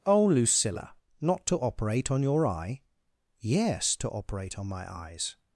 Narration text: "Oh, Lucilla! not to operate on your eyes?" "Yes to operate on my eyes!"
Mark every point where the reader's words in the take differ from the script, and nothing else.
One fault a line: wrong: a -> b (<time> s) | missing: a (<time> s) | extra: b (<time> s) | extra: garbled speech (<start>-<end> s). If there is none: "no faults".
wrong: eyes -> eye (2.5 s)